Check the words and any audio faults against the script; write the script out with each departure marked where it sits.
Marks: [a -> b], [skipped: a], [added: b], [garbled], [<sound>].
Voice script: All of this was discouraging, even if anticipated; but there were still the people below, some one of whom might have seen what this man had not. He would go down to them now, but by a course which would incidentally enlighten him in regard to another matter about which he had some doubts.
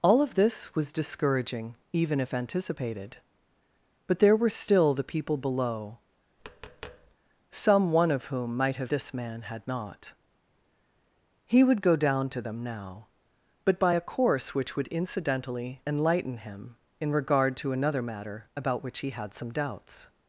All of this was discouraging, even if anticipated; but there were still the people below, [tap] some one of whom might have [skipped: seen what] this man had not. He would go down to them now, but by a course which would incidentally enlighten him in regard to another matter about which he had some doubts.